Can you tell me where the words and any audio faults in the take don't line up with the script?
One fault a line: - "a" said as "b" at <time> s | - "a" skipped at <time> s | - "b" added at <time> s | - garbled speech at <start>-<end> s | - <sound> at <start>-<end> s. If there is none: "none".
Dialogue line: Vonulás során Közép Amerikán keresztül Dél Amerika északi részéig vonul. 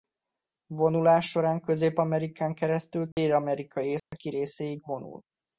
- dropout at 3.1-3.2 s
- dropout at 4.0-4.1 s